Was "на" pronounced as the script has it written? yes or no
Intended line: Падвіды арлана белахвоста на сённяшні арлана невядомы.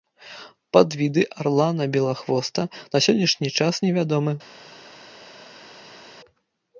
yes